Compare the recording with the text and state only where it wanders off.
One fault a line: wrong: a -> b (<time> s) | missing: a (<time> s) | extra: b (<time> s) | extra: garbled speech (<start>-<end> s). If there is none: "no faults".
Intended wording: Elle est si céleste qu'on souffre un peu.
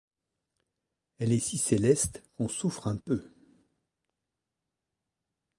no faults